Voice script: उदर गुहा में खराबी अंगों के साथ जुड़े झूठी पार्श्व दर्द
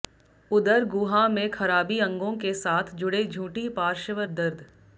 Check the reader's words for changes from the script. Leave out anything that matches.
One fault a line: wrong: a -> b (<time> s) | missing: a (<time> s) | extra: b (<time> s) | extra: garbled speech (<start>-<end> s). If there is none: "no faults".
no faults